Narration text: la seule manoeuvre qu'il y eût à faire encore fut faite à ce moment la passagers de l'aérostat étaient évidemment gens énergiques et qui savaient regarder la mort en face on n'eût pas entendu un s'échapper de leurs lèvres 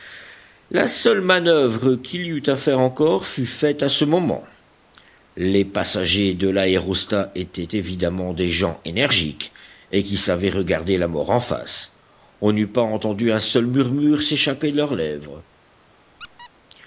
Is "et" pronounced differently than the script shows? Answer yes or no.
no